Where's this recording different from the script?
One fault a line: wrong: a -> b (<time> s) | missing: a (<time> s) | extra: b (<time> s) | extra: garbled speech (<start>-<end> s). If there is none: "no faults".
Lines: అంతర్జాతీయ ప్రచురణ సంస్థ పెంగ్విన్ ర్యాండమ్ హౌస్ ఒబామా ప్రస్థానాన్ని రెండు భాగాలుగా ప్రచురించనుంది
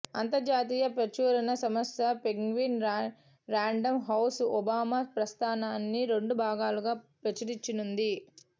no faults